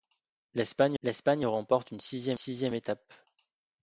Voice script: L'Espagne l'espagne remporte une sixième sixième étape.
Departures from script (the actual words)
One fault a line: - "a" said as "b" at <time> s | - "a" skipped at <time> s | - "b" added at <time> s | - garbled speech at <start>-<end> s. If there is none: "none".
none